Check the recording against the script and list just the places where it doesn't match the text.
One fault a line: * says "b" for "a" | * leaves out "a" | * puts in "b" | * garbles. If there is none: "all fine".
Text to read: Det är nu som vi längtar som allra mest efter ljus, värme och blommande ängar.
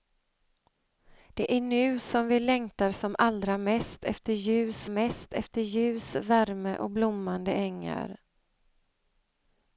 * puts in "mest efter ljus"